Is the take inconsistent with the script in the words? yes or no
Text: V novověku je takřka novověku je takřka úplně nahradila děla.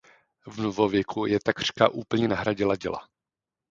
yes